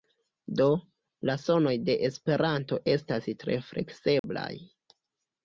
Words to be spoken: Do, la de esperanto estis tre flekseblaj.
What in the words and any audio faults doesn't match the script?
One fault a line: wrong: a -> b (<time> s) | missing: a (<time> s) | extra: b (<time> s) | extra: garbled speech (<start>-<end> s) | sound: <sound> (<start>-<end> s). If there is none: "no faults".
extra: sonoj (1.4 s)
wrong: estis -> estas (2.9 s)
sound: dropout (4.2-4.2 s)